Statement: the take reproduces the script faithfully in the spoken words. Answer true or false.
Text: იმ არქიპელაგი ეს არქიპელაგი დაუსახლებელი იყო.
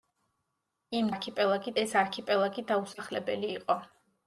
true